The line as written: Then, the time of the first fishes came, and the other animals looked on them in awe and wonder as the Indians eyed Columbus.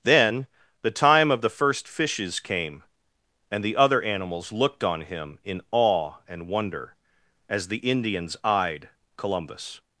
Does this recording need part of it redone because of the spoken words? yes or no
yes